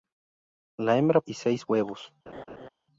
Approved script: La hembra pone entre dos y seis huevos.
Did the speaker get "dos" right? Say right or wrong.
wrong